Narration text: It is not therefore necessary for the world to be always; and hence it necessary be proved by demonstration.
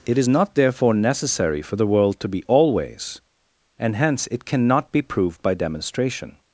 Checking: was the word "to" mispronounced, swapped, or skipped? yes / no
no